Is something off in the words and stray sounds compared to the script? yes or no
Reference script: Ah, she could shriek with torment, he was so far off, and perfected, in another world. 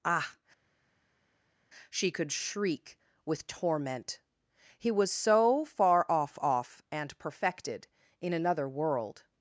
yes